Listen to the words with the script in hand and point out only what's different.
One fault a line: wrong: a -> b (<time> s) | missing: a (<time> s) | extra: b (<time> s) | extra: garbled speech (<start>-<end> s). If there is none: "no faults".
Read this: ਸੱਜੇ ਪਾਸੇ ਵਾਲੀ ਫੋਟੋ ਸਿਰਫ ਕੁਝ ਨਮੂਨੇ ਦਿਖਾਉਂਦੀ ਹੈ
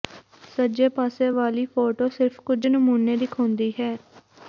no faults